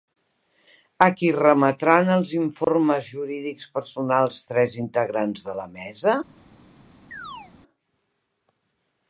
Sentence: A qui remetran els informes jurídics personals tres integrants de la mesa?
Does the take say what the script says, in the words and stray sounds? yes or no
no